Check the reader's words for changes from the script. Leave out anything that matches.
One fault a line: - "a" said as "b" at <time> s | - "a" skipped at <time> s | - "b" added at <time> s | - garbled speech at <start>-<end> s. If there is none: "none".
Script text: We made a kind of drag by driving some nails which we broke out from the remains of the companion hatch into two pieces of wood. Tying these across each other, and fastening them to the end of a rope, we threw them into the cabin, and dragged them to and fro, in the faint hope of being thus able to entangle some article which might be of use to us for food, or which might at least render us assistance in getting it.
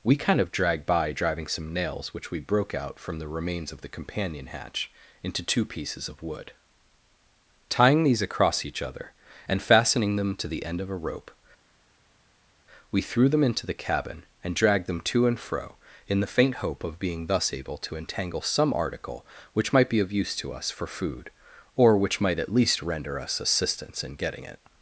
- "made a" skipped at 0.1 s